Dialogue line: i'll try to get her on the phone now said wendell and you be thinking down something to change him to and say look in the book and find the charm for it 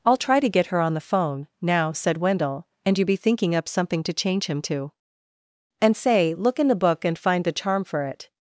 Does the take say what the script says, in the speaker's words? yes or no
no